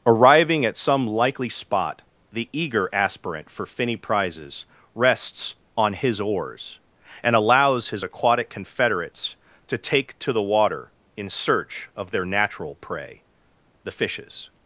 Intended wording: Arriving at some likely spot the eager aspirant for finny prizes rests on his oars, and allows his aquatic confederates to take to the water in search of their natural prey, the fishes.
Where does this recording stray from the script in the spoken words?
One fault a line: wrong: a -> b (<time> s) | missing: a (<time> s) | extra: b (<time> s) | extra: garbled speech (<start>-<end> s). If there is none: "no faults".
no faults